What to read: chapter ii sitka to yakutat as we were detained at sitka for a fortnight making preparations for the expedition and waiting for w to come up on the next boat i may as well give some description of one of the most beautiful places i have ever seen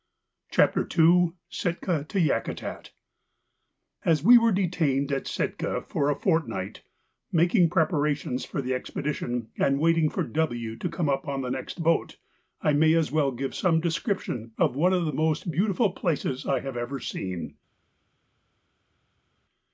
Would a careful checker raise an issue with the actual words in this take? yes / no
no